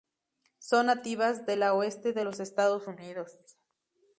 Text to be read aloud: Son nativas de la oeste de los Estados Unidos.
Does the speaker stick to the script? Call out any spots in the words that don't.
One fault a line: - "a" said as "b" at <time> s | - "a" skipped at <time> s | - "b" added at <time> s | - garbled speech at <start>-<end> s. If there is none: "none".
none